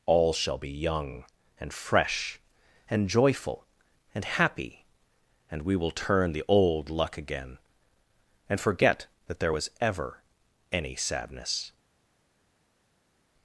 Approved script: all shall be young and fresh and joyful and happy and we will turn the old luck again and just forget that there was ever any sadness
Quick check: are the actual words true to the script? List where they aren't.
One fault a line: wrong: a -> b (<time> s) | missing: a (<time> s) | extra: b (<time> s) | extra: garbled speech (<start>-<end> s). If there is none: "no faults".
missing: just (8.6 s)